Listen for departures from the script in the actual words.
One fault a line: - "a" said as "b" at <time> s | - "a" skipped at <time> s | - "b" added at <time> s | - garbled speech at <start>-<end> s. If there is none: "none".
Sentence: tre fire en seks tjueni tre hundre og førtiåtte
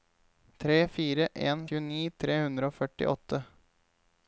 - "seks" skipped at 1.6 s